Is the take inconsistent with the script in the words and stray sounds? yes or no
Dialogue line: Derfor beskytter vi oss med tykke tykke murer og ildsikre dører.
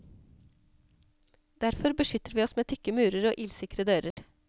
yes